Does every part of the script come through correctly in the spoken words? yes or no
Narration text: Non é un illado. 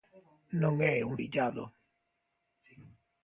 yes